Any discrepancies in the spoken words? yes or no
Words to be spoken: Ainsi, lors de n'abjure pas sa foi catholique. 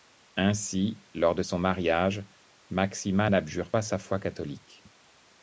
yes